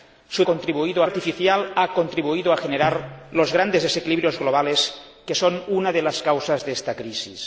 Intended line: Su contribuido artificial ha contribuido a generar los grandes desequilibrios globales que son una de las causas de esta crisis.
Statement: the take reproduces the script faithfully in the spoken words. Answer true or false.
true